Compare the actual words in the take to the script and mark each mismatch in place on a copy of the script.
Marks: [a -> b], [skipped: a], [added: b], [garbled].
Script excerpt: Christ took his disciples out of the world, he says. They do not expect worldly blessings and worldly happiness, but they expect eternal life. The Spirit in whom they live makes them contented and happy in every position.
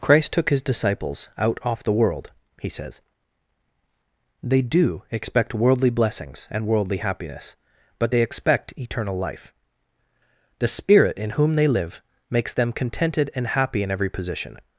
Christ took his disciples out [of -> off] the world, he says. They do [skipped: not] expect worldly blessings and worldly happiness, but they expect eternal life. The Spirit in whom they live makes them contented and happy in every position.